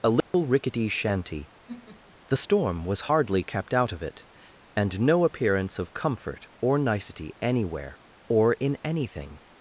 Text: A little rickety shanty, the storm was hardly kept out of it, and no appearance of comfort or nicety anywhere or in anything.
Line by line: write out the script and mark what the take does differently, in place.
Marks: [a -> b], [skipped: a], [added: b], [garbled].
A little rickety shanty, the storm was hardly kept out of it, and no appearance of comfort or nicety anywhere or in anything.